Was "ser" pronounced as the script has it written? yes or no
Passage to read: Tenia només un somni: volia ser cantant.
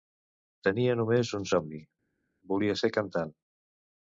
yes